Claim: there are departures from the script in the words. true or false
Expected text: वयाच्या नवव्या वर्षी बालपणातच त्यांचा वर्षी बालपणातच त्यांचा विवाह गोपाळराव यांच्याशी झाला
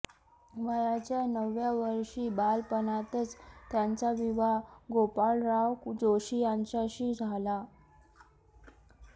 true